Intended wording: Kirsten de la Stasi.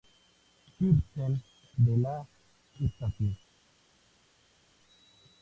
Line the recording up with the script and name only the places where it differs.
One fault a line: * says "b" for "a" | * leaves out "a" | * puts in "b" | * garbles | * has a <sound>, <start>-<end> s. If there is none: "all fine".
all fine